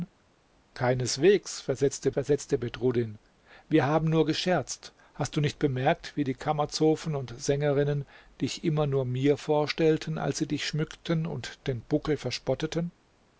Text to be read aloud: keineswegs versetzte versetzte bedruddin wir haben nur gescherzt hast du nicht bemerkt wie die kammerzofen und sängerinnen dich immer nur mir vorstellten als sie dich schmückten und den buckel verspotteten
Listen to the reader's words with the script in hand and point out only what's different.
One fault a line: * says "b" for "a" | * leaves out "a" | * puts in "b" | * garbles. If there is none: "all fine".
all fine